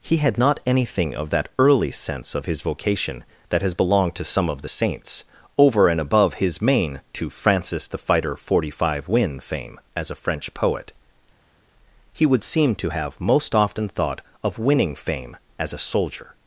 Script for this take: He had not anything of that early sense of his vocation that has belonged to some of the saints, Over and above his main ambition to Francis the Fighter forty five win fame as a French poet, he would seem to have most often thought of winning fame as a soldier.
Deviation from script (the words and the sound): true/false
true